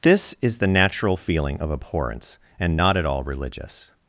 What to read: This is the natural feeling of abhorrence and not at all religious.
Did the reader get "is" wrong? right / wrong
right